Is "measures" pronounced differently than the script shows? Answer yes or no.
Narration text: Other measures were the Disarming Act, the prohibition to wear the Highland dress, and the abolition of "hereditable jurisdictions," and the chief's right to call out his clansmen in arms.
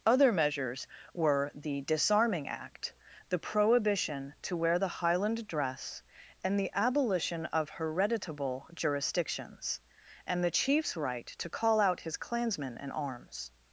no